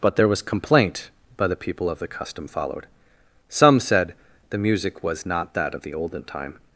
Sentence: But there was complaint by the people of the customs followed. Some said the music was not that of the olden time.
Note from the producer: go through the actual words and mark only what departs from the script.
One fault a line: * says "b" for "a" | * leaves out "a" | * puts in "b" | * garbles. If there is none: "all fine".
* says "custom" for "customs"